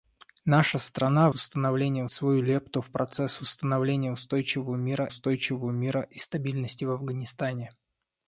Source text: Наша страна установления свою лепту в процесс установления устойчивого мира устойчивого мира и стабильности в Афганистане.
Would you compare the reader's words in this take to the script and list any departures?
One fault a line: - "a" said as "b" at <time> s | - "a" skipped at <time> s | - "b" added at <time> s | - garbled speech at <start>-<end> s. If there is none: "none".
none